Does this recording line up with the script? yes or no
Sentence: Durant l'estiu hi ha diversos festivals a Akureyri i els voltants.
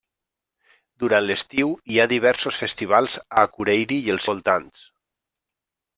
yes